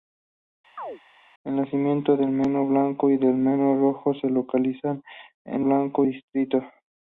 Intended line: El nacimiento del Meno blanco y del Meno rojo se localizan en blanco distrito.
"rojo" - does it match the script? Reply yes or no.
yes